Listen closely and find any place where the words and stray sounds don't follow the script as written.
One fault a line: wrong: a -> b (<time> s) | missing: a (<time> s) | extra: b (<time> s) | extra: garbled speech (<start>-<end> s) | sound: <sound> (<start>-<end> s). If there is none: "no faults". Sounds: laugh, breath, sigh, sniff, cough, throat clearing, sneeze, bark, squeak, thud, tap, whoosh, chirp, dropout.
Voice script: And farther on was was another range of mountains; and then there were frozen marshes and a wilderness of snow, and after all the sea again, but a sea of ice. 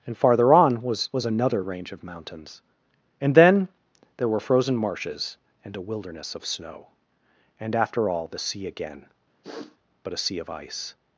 sound: sniff (9.4-9.8 s)